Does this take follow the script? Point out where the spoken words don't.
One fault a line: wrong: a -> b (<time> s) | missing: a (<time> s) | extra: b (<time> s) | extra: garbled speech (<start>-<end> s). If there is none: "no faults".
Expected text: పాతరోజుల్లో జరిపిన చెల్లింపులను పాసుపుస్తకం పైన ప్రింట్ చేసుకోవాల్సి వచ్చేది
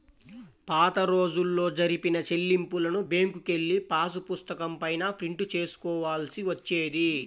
extra: బ్యేంకుకెళ్ళి (3.1 s)